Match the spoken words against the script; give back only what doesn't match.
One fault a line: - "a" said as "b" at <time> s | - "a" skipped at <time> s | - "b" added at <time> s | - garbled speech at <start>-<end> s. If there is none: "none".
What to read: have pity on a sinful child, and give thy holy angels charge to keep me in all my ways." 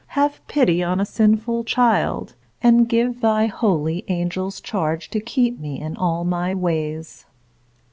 none